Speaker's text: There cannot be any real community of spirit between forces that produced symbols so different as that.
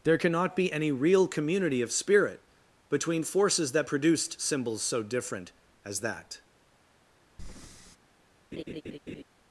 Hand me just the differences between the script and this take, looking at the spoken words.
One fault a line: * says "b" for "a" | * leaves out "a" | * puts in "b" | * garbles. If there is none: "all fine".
all fine